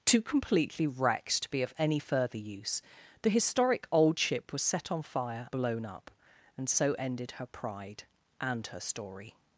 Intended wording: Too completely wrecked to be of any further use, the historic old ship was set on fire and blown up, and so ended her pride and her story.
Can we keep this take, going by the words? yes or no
no